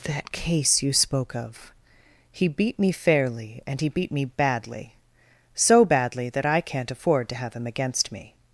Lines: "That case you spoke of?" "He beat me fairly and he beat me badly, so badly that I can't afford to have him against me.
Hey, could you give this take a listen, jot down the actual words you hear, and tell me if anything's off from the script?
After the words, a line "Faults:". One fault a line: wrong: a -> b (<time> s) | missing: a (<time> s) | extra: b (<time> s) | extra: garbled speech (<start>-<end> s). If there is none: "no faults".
"That case you spoke of?" "He beat me fairly and he beat me badly, so badly that I can't afford to have him against me.
Faults:
no faults